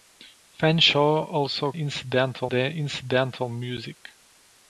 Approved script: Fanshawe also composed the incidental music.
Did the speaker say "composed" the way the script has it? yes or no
no